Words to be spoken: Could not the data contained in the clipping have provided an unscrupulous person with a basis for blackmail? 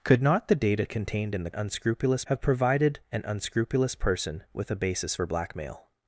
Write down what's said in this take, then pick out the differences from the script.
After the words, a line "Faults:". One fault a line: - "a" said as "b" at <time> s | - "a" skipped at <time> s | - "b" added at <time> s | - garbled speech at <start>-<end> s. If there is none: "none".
Could not the data contained in the unscrupulous have provided an unscrupulous person with a basis for blackmail?
Faults:
- "clipping" said as "unscrupulous" at 1.5 s